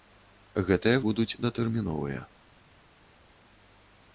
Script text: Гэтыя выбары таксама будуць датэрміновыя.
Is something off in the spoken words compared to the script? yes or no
yes